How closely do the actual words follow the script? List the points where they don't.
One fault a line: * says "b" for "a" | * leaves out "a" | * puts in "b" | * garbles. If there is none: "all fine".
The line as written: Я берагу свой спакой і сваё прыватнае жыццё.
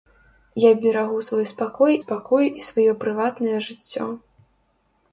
* puts in "спакой"